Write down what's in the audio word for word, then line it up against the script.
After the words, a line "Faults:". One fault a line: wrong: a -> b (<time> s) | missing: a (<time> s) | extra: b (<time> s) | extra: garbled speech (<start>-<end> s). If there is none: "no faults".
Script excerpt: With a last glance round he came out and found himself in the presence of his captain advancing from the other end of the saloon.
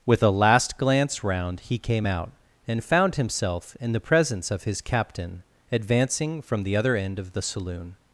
With a last glance round he came out and found himself in the presence of his captain advancing from the other end of the saloon.
Faults:
no faults